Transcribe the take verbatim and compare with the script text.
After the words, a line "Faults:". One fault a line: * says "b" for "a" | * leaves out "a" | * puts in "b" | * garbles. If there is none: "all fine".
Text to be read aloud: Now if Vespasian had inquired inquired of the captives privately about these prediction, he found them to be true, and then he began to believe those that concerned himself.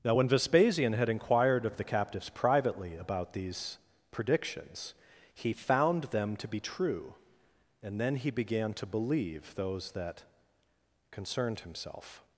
Now when Vespasian had inquired of the captives privately about these predictions, he found them to be true, and then he began to believe those that concerned himself.
Faults:
* says "when" for "if"
* leaves out "inquired"
* says "predictions" for "prediction"